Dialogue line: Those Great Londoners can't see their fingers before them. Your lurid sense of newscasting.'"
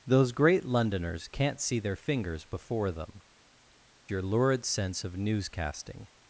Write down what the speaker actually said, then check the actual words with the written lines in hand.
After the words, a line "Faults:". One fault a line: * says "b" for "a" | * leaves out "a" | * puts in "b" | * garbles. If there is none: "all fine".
Those Great Londoners can't see their fingers before them. Your lurid sense of newscasting.'"
Faults:
all fine